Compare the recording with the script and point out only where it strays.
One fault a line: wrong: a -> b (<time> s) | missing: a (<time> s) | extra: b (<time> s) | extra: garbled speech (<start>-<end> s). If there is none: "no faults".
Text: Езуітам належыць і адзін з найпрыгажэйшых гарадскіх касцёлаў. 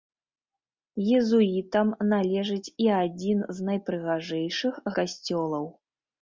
missing: гарадскіх (4.8 s)